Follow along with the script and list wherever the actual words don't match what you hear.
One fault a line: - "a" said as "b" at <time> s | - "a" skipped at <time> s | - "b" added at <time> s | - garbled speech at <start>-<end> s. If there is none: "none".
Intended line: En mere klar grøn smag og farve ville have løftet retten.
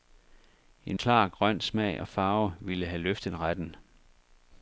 - "mere" skipped at 1.0 s